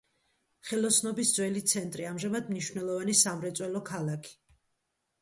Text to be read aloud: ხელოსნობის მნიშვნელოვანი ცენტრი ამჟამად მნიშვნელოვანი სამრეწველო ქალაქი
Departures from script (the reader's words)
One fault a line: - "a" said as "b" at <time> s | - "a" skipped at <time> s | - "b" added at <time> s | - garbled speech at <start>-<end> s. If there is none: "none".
- "მნიშვნელოვანი" said as "ძველი" at 1.4 s